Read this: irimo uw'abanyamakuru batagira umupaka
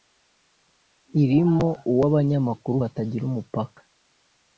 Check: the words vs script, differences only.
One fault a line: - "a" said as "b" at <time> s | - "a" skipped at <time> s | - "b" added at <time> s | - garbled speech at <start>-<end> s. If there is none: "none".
none